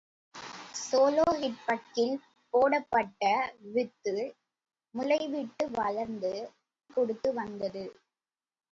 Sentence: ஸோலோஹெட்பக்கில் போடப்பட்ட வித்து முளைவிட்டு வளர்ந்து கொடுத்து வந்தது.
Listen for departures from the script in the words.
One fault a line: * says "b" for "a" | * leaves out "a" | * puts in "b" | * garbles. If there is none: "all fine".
all fine